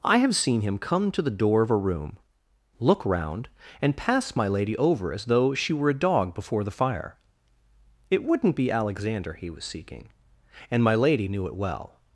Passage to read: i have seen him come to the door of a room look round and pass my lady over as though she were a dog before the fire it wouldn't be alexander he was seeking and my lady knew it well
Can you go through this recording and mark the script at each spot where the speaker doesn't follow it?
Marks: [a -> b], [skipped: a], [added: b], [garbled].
i have seen him come to the door of a room look round and pass my lady over as though she were a dog before the fire it wouldn't be alexander he was seeking and my lady knew it well